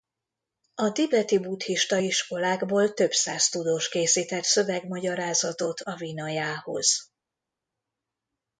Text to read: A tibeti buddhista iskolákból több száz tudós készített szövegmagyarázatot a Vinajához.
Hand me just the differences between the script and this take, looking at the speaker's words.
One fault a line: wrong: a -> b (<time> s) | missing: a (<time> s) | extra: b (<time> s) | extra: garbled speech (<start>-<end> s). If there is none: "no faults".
no faults